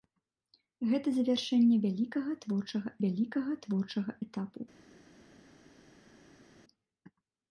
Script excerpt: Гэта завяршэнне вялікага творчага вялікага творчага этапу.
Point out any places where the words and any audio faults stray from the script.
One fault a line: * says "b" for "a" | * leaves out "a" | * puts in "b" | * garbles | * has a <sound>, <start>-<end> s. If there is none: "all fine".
all fine